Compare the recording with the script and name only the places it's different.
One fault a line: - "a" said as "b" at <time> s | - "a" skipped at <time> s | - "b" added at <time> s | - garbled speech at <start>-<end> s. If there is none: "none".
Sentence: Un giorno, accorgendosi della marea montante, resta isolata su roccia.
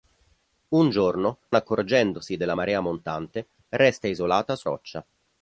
none